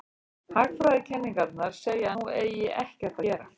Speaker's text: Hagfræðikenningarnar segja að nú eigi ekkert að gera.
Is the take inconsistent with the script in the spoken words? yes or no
yes